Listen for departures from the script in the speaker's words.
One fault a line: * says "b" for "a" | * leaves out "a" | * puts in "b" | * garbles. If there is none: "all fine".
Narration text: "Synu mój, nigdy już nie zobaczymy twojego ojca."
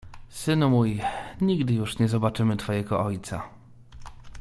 all fine